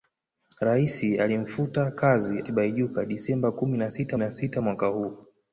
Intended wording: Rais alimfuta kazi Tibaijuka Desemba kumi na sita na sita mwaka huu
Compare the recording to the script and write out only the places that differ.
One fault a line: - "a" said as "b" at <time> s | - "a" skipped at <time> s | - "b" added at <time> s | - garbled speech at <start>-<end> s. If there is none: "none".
none